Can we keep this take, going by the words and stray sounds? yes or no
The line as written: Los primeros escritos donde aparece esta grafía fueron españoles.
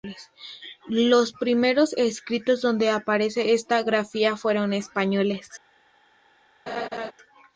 no